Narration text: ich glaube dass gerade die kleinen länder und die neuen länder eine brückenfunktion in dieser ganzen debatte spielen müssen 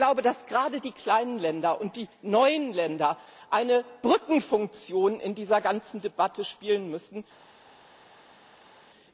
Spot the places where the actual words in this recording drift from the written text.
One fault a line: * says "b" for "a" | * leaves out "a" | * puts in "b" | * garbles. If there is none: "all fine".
all fine